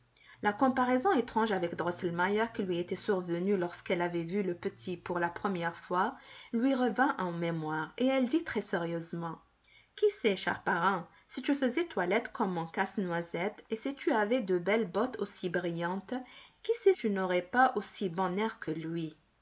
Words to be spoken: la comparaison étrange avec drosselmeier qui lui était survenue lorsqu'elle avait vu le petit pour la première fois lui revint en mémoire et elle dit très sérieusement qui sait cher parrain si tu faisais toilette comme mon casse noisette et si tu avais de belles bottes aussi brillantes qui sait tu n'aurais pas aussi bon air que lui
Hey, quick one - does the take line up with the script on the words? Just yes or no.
yes